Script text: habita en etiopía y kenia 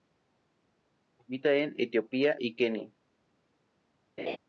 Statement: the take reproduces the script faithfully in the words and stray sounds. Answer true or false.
false